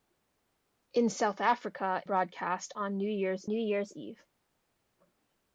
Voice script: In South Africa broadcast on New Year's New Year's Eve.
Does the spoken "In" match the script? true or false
true